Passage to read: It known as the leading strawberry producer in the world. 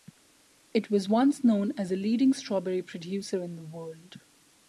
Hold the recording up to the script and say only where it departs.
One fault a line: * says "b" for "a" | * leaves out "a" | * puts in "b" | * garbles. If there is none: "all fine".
* puts in "was once"